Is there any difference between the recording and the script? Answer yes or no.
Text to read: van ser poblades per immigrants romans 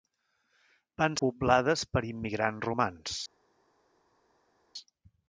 yes